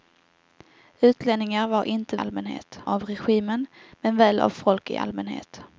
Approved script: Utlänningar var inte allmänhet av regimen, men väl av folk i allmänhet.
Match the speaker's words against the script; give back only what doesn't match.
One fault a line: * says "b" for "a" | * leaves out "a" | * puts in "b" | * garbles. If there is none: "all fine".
all fine